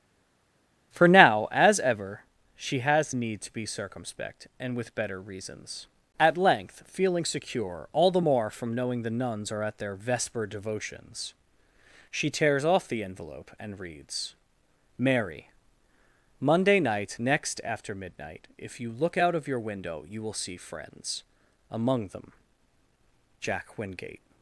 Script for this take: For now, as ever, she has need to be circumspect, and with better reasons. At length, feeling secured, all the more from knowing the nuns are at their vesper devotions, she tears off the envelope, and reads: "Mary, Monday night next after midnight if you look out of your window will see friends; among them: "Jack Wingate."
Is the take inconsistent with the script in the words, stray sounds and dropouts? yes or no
yes